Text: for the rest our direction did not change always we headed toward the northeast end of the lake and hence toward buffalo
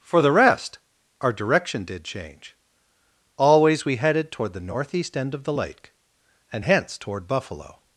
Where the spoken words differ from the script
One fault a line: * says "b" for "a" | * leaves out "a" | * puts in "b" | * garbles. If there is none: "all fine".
* leaves out "not"